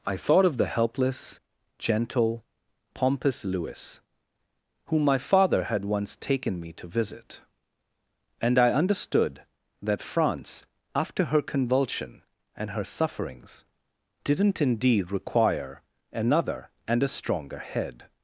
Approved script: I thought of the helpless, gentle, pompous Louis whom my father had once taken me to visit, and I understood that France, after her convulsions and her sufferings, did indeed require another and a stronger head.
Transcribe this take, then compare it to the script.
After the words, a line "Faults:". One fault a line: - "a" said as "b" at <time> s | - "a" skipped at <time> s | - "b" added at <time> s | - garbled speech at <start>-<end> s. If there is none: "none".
I thought of the helpless, gentle, pompous Louis whom my father had once taken me to visit, and I understood that France, after her convulsion and her sufferings, didn't indeed require another and a stronger head.
Faults:
- "convulsions" said as "convulsion" at 11.4 s
- "did" said as "didn't" at 14.2 s